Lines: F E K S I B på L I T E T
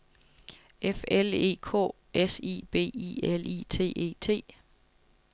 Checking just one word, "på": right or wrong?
wrong